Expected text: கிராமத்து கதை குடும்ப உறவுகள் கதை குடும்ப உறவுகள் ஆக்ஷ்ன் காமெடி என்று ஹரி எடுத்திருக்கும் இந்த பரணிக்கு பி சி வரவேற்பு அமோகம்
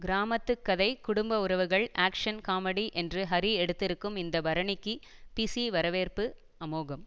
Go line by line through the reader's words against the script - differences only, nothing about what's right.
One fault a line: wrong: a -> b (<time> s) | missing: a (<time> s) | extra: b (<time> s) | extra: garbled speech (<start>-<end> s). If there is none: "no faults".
missing: கதை குடும்ப உறவுகள் (1.9 s)